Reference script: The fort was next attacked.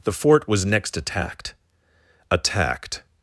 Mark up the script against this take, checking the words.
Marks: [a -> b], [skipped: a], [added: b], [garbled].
The fort was next attacked. [added: attacked]